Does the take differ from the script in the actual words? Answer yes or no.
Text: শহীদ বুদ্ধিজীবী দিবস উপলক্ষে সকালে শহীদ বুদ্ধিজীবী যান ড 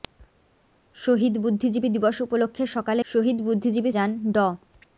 no